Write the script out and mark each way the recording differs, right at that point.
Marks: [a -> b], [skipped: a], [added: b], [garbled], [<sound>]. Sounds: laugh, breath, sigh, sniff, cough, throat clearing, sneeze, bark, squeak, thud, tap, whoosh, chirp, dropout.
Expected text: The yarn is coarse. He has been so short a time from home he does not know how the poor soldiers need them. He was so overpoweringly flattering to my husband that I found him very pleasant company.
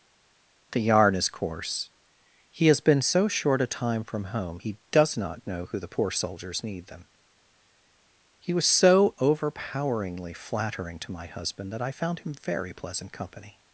The yarn is coarse. He has been so short a time from home he does not know [how -> who] the poor soldiers need them. He was so overpoweringly flattering to my husband that I found him very pleasant company.